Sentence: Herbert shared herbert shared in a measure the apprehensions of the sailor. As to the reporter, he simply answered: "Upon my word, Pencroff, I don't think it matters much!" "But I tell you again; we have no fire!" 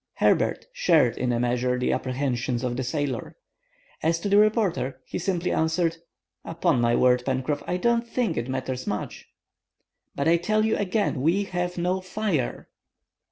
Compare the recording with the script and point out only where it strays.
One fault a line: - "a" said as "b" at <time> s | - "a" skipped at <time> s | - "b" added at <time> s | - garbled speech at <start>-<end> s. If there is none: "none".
- "herbert shared" skipped at 1.1 s